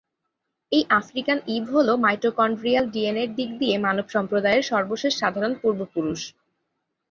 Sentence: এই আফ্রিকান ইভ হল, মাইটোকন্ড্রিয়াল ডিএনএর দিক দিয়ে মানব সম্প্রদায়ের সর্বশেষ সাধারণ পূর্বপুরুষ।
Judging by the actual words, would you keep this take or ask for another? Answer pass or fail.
pass